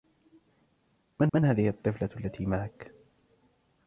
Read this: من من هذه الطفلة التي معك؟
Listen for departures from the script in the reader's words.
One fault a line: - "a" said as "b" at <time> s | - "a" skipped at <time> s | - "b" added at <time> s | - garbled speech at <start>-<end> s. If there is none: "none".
none